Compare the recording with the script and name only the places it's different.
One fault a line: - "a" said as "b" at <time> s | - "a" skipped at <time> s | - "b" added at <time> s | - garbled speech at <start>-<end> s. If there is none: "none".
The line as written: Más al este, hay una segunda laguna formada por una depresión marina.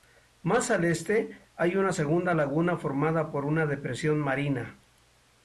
none